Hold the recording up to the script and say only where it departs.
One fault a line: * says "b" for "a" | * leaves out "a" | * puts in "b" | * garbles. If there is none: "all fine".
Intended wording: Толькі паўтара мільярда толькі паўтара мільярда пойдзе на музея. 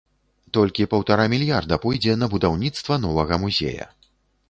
* says "пойдзе на будаўніцтва новага" for "толькі паўтара мільярда пойдзе на"